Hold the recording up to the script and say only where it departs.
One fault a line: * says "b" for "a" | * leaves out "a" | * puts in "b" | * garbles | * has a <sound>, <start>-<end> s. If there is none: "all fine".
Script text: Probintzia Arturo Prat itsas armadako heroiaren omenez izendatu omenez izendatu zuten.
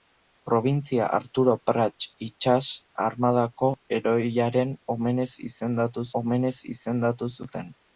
all fine